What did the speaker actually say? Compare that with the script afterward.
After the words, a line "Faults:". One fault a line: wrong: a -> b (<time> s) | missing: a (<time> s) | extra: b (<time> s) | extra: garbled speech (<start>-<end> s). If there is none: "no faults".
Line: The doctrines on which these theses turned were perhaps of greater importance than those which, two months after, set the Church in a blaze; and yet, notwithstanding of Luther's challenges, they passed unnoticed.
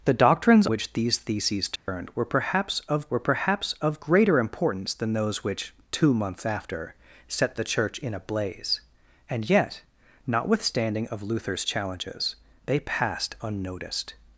The doctrines which these theses turned were perhaps of were perhaps of greater importance than those which, two months after, set the Church in a blaze; and yet, notwithstanding of Luther's challenges, they passed unnoticed.
Faults:
missing: on (0.7 s)
extra: were perhaps of (3.1 s)